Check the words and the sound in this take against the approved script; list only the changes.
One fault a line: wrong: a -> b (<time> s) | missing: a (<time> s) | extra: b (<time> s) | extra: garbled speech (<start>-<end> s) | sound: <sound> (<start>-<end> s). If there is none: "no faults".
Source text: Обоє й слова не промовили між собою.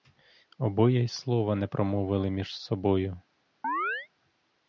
sound: chirp (3.6-4.1 s)